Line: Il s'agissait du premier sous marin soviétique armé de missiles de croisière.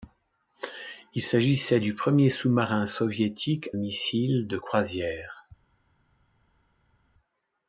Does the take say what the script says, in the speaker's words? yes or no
no